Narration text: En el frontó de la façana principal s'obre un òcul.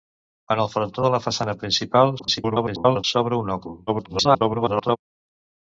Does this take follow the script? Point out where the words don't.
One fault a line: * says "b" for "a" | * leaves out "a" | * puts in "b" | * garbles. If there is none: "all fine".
* garbles
* garbles